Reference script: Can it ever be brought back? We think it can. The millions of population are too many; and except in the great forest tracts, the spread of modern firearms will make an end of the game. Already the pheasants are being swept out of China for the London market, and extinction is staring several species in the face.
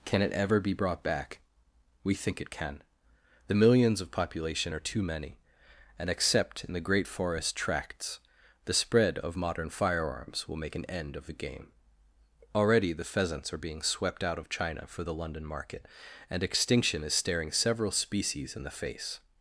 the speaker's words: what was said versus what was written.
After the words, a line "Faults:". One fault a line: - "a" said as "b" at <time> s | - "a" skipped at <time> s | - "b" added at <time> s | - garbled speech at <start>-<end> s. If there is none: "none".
Can it ever be brought back? We think it can. The millions of population are too many; and except in the great forest tracts, the spread of modern firearms will make an end of the game. Already the pheasants are being swept out of China for the London market, and extinction is staring several species in the face.
Faults:
none